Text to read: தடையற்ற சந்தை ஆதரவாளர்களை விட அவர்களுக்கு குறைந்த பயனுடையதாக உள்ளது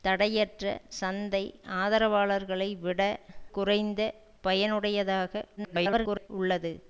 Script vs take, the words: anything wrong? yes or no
yes